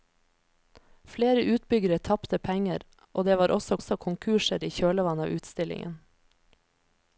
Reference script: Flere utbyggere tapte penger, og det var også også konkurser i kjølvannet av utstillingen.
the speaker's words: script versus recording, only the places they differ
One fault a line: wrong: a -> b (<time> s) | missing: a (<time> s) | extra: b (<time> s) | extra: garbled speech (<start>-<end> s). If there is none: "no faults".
no faults